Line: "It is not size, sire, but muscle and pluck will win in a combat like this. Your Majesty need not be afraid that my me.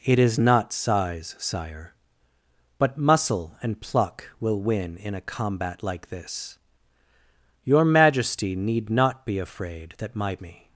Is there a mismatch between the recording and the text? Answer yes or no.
no